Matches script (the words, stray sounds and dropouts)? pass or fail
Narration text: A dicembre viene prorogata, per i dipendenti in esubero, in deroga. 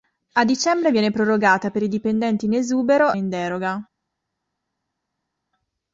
pass